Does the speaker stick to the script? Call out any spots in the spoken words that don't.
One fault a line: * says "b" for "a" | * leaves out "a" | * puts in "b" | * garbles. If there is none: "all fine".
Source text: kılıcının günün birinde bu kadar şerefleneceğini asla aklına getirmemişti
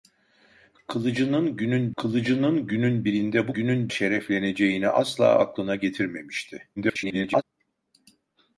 * puts in "kılıcının günün"
* says "günün" for "kadar"
* garbles